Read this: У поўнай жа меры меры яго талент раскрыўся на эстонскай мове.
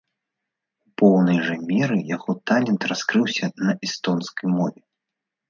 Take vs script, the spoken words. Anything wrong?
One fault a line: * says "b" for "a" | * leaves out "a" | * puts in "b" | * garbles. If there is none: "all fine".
* leaves out "меры"